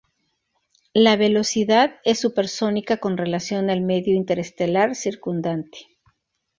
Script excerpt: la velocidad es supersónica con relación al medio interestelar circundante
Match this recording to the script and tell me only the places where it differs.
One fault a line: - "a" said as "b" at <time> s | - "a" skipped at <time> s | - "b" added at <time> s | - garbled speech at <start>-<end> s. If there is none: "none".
none